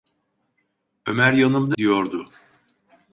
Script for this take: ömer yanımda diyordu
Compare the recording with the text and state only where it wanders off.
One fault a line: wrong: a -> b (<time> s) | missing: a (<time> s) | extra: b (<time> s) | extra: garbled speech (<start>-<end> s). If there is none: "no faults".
no faults